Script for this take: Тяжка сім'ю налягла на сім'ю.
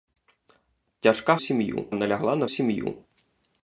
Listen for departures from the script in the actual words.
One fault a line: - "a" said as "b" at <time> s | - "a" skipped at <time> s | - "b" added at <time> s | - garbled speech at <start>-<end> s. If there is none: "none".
none